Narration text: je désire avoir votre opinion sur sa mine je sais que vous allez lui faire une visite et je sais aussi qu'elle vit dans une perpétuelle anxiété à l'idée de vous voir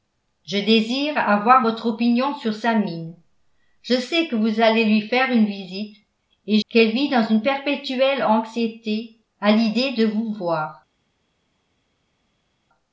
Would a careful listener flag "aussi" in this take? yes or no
yes